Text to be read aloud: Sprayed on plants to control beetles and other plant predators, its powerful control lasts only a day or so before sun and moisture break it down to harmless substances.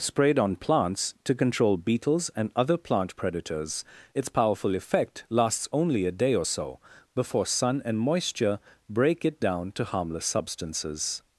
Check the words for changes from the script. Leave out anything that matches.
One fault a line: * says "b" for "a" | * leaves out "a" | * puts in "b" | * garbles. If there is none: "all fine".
* says "effect" for "control"